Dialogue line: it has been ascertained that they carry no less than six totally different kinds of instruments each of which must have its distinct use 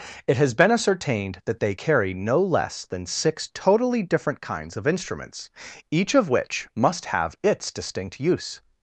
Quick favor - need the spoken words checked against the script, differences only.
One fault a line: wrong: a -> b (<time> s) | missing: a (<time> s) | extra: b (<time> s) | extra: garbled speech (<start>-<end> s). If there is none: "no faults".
no faults